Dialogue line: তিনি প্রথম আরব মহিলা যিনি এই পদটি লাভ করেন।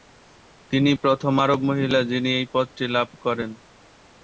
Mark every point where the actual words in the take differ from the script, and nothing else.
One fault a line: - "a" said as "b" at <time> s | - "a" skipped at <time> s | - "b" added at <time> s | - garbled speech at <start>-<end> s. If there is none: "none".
none